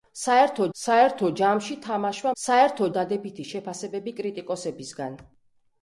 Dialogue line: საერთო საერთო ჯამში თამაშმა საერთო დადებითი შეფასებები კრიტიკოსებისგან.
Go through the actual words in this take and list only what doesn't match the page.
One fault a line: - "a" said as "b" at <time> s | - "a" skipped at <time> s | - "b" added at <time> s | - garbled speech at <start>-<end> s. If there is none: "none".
none